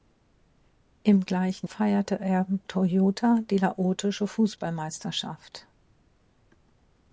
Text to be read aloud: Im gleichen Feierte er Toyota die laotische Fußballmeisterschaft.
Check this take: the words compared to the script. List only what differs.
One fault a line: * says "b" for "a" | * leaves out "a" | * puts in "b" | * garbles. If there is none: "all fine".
all fine